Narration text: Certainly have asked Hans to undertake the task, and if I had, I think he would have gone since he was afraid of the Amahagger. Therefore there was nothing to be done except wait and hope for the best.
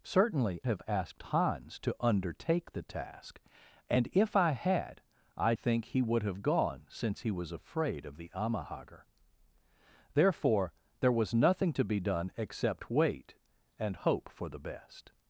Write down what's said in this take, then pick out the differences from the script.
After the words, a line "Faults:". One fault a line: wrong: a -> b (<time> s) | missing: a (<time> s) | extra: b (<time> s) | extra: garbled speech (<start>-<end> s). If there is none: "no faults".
Certainly have asked Hans to undertake the task, and if I had, I think he would have gone since he was afraid of the Amahagger. Therefore there was nothing to be done except wait and hope for the best.
Faults:
no faults